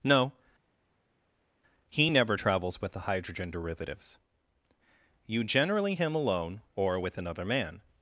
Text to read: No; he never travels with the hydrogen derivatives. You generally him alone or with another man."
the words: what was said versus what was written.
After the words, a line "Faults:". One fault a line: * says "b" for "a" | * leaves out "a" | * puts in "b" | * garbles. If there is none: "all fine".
No; he never travels with the hydrogen derivatives. You generally him alone or with another man."
Faults:
all fine